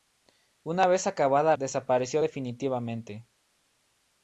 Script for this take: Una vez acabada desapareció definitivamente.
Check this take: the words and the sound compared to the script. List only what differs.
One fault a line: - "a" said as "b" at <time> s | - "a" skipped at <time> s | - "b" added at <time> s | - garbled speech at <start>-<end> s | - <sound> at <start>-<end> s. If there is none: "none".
none